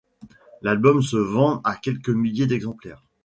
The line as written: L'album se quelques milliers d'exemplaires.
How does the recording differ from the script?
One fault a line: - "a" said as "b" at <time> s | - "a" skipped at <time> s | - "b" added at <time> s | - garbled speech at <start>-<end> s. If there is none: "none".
- "vend à" added at 1.2 s